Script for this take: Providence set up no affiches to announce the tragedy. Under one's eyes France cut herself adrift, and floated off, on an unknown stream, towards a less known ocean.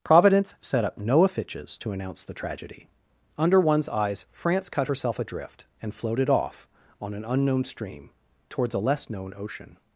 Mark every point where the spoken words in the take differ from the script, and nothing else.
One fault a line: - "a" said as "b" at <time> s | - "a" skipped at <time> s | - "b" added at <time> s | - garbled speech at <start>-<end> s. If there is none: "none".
none